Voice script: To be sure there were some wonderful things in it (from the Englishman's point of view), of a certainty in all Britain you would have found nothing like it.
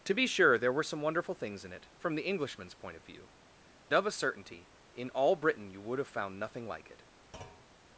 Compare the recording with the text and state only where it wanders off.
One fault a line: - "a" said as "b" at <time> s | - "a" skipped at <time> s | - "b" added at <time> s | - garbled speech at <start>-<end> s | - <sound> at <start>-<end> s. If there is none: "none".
- thud at 7.3-7.7 s